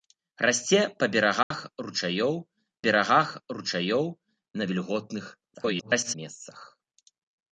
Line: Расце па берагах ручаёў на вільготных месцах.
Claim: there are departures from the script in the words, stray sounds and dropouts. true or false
true